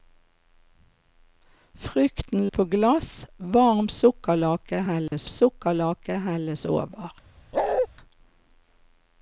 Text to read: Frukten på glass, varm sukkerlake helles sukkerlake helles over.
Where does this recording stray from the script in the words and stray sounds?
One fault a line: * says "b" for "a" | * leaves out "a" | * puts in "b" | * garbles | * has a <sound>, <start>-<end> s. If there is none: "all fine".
* has a dropout, 5.1-5.1 s
* has a bark, 7.5-7.9 s